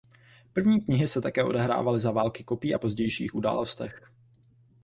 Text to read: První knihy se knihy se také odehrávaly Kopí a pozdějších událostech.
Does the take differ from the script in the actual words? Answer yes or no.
yes